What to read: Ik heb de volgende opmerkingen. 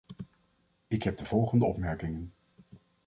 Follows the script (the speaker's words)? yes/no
yes